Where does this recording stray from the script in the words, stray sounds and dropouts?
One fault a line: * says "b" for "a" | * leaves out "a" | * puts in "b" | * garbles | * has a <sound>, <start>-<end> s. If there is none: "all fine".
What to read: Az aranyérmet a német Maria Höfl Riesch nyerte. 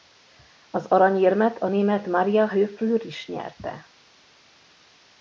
all fine